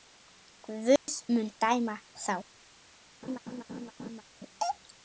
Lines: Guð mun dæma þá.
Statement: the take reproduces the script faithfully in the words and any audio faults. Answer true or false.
false